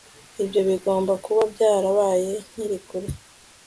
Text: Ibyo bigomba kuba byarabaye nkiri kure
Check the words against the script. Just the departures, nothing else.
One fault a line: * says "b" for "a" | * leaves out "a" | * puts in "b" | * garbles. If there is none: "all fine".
all fine